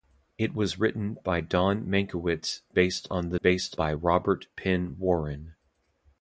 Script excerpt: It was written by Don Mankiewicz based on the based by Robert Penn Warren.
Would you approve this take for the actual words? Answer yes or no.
yes